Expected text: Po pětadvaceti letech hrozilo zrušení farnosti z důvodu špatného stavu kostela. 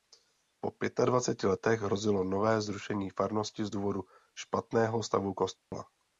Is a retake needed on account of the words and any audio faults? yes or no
yes